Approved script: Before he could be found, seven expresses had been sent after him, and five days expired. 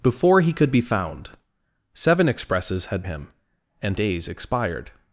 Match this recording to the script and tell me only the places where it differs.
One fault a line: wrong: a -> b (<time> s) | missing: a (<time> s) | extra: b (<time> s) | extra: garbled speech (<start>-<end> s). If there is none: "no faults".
missing: been sent after (3.0 s)
missing: five (4.0 s)